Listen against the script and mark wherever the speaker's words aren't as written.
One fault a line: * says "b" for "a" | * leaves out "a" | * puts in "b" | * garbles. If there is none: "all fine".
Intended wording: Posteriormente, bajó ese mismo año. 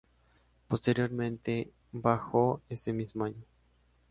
all fine